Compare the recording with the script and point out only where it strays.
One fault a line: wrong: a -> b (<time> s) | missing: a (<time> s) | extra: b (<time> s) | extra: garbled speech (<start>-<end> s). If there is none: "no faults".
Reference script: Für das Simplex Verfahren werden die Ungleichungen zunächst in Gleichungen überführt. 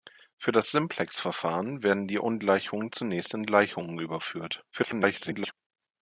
extra: garbled speech (4.7-5.5 s)